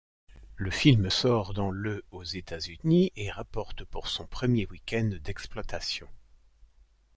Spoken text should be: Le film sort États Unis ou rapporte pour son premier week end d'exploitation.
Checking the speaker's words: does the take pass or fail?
fail